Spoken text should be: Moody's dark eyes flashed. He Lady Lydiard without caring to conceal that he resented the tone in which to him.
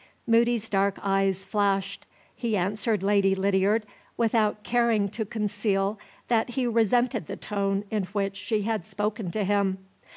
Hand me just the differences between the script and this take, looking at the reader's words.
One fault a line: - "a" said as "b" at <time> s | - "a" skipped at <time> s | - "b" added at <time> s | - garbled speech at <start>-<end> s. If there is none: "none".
- "answered" added at 2.6 s
- "she had spoken" added at 8.4 s